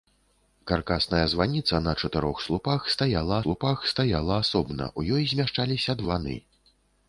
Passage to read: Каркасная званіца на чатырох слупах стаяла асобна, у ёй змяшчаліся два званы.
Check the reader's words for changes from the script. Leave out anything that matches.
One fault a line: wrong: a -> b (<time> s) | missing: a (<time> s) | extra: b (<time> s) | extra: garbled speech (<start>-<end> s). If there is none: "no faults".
extra: слупах стаяла (3.4 s)
missing: два (6.0 s)